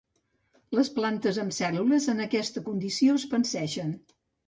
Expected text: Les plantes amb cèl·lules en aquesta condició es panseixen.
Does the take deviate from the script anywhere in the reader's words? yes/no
no